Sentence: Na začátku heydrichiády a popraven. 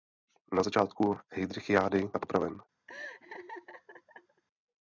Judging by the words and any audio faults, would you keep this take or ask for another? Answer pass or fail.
fail